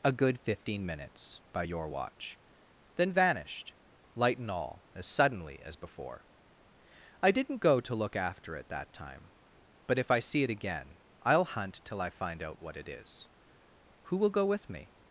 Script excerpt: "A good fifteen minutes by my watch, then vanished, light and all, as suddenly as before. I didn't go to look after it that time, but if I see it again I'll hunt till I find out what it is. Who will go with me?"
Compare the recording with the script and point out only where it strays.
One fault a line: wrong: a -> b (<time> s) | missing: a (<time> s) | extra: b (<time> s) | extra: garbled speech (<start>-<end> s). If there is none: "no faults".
wrong: my -> your (1.6 s)